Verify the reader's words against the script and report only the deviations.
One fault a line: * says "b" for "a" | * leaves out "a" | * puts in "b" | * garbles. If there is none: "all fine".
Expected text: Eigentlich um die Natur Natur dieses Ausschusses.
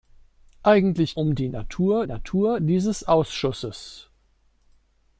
all fine